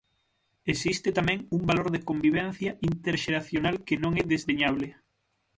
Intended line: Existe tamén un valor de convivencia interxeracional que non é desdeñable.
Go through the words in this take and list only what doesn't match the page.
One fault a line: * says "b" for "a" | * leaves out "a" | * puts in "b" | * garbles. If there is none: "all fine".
all fine